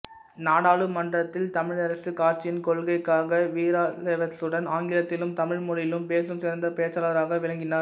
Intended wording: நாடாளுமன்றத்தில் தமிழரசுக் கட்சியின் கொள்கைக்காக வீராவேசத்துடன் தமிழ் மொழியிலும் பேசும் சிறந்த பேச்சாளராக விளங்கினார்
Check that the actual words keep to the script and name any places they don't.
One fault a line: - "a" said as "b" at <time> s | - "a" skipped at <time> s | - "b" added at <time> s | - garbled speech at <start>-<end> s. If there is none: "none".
- "ஆங்கிலத்திலும்" added at 4.7 s